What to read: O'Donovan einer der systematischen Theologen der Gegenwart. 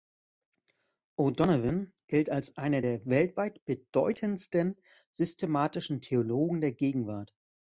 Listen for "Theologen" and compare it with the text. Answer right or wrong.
right